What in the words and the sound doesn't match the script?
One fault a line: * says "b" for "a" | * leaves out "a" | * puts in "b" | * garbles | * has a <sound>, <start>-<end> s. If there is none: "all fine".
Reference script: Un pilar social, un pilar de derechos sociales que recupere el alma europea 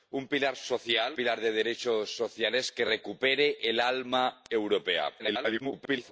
* leaves out "un"
* garbles